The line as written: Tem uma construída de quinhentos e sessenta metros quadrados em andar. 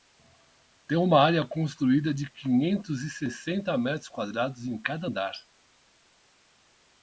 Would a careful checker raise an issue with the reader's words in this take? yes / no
yes